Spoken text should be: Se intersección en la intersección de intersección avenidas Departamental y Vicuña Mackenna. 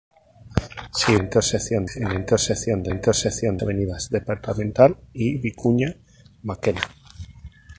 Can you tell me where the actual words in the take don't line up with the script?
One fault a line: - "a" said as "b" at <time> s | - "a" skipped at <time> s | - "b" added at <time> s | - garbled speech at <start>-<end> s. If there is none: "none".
none